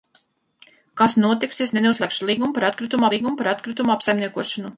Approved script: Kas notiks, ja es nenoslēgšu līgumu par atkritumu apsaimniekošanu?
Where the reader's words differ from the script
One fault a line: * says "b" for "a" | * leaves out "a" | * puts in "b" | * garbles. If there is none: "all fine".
* puts in "līgumu par atkritumu"